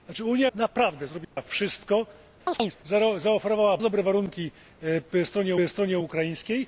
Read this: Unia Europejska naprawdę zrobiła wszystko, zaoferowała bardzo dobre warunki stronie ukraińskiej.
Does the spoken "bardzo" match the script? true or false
false